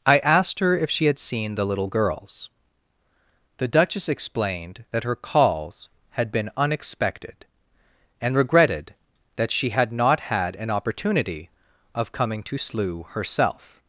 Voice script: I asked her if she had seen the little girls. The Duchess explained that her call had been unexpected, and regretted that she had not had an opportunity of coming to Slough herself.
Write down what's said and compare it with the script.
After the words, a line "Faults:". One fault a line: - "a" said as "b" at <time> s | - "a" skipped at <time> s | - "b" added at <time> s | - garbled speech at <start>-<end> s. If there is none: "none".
I asked her if she had seen the little girls. The Duchess explained that her calls had been unexpected, and regretted that she had not had an opportunity of coming to Slough herself.
Faults:
- "call" said as "calls" at 5.2 s